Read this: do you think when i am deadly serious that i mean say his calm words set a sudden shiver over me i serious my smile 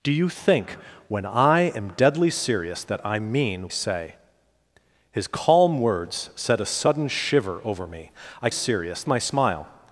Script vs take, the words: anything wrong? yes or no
no